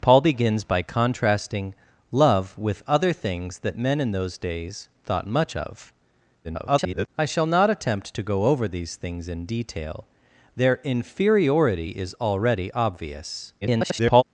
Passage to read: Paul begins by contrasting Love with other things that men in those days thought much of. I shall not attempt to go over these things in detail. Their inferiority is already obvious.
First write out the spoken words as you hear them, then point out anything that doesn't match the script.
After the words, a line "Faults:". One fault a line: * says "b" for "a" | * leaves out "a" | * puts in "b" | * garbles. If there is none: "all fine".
Paul begins by contrasting Love with other things that men in those days thought much of. [garbled] I shall not attempt to go over these things in detail. Their inferiority is already obvious. [garbled]
Faults:
* garbles
* garbles